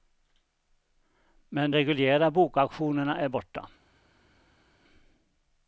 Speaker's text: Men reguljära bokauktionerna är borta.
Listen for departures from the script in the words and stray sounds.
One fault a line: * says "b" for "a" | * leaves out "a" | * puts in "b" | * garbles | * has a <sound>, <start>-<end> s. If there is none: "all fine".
all fine